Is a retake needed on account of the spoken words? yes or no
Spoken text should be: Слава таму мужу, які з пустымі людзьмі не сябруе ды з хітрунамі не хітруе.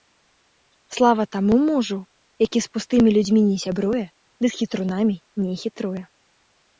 no